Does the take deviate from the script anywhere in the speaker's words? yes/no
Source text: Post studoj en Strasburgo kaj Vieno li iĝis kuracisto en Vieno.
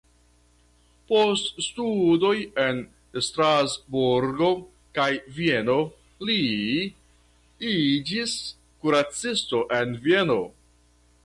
no